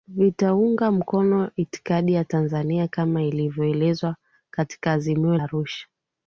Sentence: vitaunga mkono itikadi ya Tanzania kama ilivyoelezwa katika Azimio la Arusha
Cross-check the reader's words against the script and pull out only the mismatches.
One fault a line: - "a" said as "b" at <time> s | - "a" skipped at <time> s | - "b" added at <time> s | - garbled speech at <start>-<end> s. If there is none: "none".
- "la" skipped at 5.4 s